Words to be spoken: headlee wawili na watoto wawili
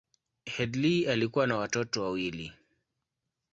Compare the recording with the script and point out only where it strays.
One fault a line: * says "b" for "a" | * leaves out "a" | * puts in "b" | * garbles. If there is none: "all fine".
* says "alikuwa" for "wawili"